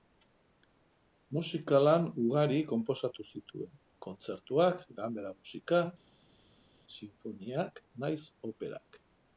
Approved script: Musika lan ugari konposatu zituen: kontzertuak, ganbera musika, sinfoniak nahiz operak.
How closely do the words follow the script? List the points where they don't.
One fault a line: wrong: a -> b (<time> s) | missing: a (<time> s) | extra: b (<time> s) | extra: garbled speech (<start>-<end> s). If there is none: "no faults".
no faults